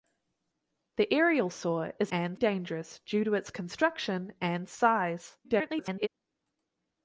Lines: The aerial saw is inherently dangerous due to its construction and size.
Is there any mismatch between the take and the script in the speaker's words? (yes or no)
yes